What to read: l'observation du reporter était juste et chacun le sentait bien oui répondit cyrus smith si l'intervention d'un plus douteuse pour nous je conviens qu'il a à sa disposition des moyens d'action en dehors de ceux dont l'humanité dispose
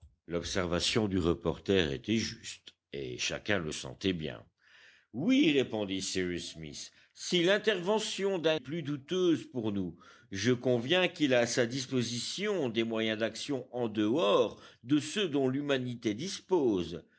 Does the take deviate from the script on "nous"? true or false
false